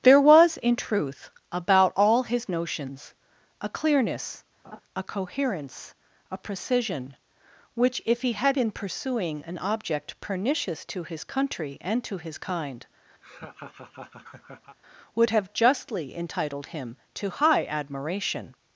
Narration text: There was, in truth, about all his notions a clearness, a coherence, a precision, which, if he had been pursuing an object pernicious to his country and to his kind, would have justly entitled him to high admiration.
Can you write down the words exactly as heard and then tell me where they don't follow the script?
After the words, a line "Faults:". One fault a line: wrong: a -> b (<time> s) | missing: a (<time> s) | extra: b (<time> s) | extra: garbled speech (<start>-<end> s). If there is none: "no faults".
There was, in truth, about all his notions a clearness, a coherence, a precision, which, if he had been pursuing an object pernicious to his country and to his kind, would have justly entitled him to high admiration.
Faults:
no faults